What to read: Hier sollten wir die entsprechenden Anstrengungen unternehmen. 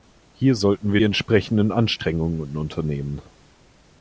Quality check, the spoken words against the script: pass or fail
fail